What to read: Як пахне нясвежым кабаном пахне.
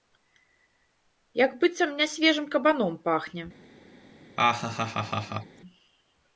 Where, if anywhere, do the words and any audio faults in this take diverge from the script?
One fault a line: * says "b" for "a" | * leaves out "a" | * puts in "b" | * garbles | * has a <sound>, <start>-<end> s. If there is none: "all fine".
* says "быццам" for "пахне"
* has a laugh, 4.4-5.6 s